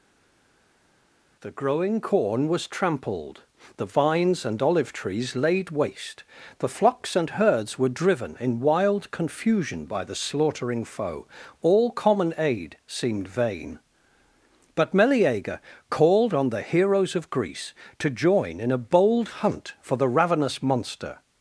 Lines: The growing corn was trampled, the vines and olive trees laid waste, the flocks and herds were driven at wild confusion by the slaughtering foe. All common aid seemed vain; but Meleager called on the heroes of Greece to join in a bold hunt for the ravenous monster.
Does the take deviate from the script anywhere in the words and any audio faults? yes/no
yes